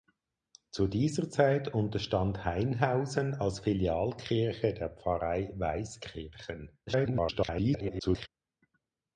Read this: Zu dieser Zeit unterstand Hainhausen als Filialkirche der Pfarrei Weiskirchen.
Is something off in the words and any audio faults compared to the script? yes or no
yes